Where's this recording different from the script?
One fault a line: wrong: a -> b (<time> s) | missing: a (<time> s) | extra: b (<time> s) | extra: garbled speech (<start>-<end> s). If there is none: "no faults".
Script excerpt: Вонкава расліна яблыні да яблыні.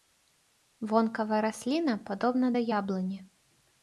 wrong: яблыні -> падобна (2.1 s)